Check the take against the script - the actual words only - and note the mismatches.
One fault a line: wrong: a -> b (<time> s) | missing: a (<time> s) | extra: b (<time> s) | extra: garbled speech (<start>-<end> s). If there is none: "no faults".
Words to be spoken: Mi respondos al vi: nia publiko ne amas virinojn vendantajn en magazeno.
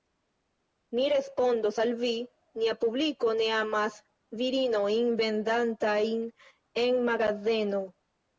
no faults